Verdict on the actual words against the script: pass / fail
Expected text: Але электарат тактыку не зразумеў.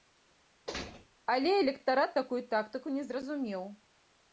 fail